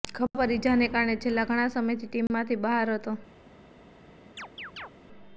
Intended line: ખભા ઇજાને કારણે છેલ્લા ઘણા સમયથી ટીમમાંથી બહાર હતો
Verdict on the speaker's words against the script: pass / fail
fail